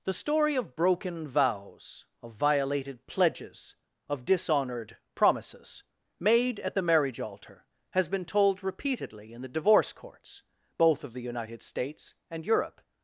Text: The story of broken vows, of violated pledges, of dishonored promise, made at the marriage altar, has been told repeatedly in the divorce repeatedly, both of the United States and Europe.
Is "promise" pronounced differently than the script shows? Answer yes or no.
yes